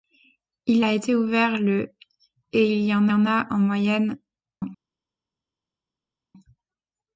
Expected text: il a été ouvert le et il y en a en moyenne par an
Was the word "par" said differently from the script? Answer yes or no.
yes